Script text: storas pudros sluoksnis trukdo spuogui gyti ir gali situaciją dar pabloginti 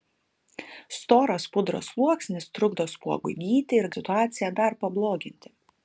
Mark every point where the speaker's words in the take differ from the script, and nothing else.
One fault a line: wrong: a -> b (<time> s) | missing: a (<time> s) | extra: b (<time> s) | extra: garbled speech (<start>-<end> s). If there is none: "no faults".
missing: gali (3.9 s)